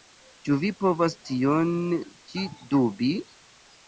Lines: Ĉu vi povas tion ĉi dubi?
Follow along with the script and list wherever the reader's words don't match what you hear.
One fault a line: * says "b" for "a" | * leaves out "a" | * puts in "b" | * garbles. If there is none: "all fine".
all fine